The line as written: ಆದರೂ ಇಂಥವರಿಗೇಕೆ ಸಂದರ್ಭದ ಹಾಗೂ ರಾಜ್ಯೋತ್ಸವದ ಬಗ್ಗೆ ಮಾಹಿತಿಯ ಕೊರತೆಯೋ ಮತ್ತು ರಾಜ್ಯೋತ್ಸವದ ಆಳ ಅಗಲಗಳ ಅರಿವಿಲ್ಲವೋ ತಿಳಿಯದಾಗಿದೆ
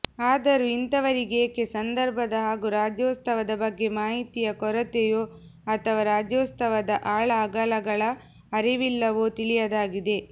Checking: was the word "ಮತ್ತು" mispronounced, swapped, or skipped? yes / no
yes